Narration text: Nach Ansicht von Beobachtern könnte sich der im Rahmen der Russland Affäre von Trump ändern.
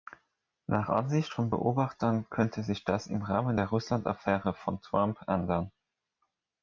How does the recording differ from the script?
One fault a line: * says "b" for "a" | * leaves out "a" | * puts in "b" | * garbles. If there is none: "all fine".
* says "das" for "der"